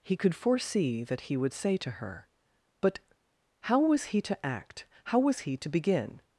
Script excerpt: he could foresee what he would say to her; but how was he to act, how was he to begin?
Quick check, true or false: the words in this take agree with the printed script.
false